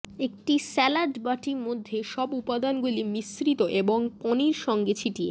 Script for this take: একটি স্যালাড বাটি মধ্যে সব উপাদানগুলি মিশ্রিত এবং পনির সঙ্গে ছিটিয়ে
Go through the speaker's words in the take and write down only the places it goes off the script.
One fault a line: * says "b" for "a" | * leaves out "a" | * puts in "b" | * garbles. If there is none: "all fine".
all fine